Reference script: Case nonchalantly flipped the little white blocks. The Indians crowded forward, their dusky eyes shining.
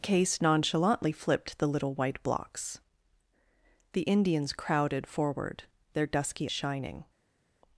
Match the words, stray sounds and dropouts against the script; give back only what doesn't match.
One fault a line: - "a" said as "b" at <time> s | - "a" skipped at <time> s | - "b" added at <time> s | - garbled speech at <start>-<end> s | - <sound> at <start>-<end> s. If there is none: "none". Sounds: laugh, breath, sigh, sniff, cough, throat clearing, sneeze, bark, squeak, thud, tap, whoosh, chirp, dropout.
- "eyes" skipped at 6.5 s